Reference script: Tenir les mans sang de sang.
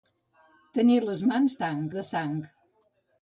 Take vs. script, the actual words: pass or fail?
pass